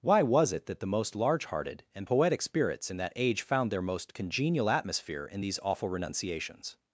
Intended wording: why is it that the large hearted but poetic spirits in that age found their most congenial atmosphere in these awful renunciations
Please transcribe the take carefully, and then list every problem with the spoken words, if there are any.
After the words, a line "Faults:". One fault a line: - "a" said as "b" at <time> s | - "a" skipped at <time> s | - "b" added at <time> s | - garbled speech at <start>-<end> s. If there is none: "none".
why was it that the most large hearted and poetic spirits in that age found their most congenial atmosphere in these awful renunciations
Faults:
- "is" said as "was" at 0.2 s
- "most" added at 0.9 s
- "but" said as "and" at 1.9 s